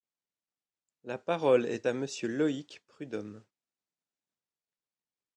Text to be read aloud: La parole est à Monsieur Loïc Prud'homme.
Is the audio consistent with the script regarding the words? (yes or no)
yes